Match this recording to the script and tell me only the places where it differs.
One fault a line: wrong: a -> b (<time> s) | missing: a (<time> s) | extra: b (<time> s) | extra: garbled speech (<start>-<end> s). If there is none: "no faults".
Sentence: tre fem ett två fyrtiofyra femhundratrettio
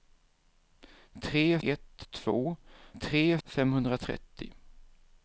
missing: fem (1.6 s)
wrong: fyrtiofyra -> tre (3.0 s)